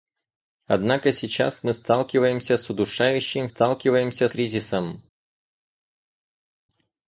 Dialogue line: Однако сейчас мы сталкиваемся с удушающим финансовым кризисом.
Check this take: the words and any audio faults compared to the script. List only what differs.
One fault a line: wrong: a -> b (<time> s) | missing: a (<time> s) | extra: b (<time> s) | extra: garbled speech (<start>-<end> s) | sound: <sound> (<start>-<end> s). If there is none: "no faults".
wrong: финансовым -> сталкиваемся (3.5 s)